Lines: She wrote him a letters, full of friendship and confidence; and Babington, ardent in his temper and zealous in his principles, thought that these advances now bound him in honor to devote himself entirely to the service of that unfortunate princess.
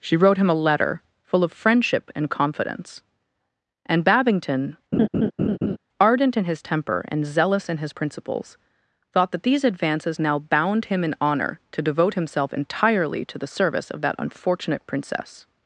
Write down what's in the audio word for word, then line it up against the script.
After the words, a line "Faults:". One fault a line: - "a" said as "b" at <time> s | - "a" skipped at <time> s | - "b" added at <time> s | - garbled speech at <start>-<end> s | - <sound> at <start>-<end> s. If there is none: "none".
She wrote him a letter, full of friendship and confidence; and Babington, ardent in his temper and zealous in his principles, thought that these advances now bound him in honor to devote himself entirely to the service of that unfortunate princess.
Faults:
- "letters" said as "letter" at 0.6 s
- laugh at 4.9-5.8 s